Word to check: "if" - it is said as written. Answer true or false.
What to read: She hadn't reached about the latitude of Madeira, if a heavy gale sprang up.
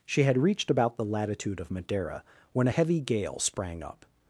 false